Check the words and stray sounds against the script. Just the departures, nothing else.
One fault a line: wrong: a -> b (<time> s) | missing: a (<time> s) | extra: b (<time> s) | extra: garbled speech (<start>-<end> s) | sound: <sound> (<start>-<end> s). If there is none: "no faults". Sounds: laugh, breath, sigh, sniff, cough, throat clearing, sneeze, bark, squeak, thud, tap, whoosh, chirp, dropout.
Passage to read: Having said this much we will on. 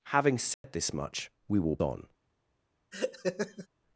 sound: dropout (0.5-0.6 s)
sound: laugh (2.9-3.7 s)